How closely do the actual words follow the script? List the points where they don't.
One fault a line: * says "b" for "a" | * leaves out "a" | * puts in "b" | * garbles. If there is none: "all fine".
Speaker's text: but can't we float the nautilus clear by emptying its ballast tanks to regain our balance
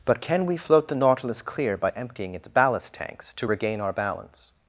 * says "can" for "can't"